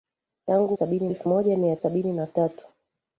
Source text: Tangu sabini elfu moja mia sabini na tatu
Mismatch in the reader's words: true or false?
false